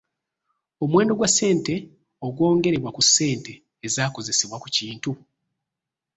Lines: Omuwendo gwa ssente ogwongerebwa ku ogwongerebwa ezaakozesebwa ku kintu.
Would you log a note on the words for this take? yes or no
yes